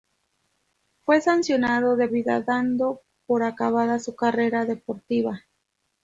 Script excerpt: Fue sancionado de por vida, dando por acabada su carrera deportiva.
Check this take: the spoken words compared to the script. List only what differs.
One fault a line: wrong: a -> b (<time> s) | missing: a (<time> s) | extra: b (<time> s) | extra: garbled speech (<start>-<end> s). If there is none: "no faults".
missing: por (2.1 s)